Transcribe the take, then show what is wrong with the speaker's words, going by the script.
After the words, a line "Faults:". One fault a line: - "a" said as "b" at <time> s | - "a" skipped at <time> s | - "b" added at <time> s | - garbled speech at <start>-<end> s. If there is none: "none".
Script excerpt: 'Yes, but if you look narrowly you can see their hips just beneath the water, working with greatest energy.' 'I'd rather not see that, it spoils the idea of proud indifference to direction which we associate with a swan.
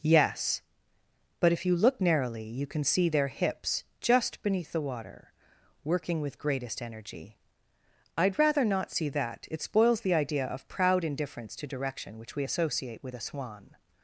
'Yes, but if you look narrowly you can see their hips just beneath the water, working with greatest energy.' 'I'd rather not see that, it spoils the idea of proud indifference to direction which we associate with a swan.
Faults:
none